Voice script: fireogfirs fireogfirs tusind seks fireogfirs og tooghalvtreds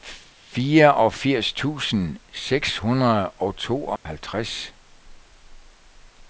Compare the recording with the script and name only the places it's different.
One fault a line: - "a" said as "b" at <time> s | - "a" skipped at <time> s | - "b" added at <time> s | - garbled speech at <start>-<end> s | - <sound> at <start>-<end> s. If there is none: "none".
- "fireogfirs" skipped at 1.5 s
- "fireogfirs" said as "hundrede" at 2.7 s
- dropout at 4.0-4.1 s